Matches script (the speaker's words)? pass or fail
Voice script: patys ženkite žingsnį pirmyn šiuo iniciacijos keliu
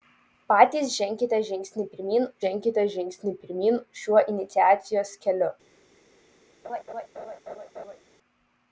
fail